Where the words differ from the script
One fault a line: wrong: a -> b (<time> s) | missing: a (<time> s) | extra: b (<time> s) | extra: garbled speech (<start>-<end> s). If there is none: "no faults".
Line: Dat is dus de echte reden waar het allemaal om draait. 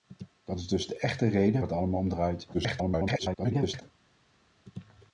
missing: waar (1.6 s)
extra: garbled speech (2.5-3.8 s)